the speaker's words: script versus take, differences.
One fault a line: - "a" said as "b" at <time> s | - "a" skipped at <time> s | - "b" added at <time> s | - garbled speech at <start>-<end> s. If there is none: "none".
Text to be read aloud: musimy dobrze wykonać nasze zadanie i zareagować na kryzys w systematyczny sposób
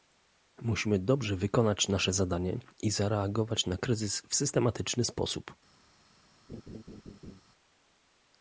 none